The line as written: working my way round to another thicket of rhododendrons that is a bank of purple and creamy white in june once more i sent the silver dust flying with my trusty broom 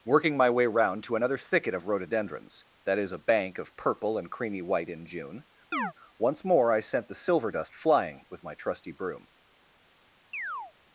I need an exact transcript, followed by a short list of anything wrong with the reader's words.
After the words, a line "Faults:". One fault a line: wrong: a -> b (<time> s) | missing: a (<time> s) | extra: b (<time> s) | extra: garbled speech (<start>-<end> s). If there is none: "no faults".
working my way round to another thicket of rhododendrons that is a bank of purple and creamy white in june once more i sent the silver dust flying with my trusty broom
Faults:
no faults